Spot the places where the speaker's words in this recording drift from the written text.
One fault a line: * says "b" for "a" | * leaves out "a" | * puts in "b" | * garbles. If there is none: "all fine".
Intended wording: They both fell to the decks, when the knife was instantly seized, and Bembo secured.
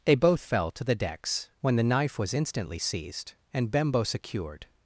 all fine